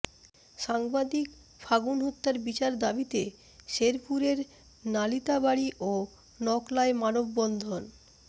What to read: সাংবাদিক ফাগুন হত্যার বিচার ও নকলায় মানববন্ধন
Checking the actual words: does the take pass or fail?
fail